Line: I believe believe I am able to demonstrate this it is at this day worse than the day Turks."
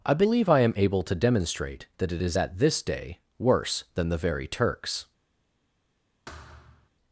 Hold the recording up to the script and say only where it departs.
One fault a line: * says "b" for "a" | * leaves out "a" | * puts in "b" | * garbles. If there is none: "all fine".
* leaves out "believe"
* says "that" for "this"
* says "very" for "day"